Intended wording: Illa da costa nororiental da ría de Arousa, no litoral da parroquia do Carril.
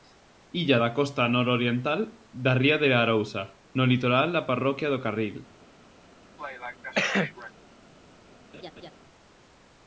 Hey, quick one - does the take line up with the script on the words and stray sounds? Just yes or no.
no